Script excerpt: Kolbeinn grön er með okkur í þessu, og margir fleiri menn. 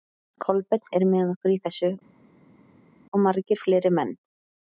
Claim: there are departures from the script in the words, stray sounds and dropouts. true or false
true